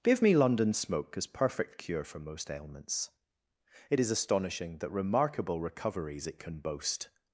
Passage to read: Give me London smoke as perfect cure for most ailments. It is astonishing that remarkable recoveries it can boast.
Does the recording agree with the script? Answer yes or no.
yes